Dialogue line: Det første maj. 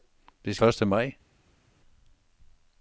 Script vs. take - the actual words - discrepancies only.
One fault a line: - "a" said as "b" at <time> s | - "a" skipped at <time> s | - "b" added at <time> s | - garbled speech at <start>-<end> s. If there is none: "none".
none